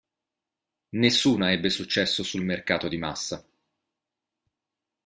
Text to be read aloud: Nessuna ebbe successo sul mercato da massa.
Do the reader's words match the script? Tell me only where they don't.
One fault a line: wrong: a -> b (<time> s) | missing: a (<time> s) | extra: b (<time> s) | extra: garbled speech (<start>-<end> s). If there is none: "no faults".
wrong: da -> di (2.9 s)